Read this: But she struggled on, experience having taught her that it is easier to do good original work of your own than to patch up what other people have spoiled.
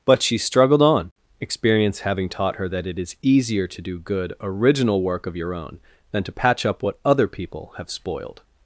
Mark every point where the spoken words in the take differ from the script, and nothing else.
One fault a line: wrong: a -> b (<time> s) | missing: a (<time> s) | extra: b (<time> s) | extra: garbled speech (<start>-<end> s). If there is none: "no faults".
no faults